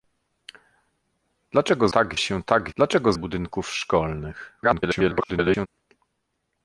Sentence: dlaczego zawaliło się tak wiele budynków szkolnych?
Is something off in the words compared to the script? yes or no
yes